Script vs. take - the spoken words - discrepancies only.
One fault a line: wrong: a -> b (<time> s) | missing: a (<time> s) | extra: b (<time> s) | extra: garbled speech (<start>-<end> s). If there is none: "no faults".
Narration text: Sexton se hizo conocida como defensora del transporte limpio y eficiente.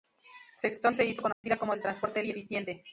missing: defensora (1.7 s)
missing: limpio (2.2 s)